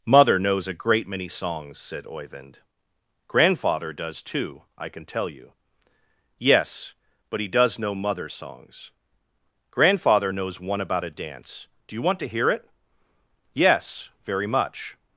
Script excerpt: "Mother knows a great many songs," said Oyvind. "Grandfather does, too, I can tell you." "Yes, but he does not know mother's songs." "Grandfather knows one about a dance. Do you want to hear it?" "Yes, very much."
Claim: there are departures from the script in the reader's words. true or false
true